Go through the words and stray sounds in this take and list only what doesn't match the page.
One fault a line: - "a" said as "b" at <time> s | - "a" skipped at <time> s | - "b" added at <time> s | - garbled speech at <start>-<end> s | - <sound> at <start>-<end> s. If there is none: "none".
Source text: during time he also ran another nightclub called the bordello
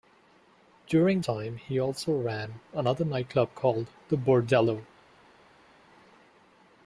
none